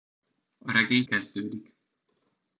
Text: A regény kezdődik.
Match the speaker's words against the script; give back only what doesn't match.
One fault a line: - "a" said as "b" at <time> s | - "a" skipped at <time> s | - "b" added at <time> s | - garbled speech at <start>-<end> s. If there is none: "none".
none